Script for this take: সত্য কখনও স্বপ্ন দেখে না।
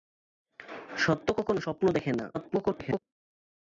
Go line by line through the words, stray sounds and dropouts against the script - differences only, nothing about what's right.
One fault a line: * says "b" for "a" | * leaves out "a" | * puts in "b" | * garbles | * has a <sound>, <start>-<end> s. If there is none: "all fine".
* garbles